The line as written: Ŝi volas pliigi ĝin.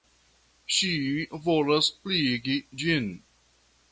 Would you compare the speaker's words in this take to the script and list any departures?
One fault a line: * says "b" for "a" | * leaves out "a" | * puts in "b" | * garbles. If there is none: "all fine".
all fine